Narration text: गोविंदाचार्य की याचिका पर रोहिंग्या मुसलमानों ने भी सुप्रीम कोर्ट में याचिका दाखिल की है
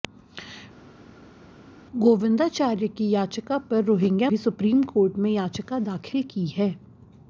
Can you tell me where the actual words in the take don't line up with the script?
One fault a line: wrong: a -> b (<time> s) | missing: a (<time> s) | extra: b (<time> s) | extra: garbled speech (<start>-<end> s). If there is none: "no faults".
missing: मुसलमानों ने (4.3 s)